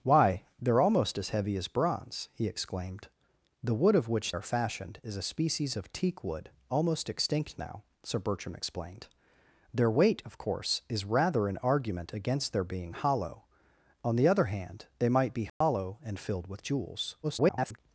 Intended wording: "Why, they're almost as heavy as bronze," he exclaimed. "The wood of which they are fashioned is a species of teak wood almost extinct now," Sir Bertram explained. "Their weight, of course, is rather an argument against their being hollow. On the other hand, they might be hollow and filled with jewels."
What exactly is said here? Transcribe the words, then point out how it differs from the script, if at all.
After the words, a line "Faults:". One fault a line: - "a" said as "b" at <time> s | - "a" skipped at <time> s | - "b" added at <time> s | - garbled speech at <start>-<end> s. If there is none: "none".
"Why, they're almost as heavy as bronze," he exclaimed. "The wood of which are fashioned is a species of teak wood almost extinct now," Sir Bertram explained. "Their weight, of course, is rather an argument against their being hollow. On the other hand, they might be hollow and filled with jewels." [garbled]
Faults:
- "they" skipped at 4.3 s
- garbled speech at 17.2-17.8 s